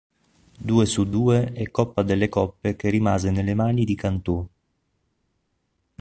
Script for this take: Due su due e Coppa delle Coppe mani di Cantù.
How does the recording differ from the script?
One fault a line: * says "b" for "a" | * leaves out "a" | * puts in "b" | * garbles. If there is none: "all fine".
* puts in "che rimase nelle"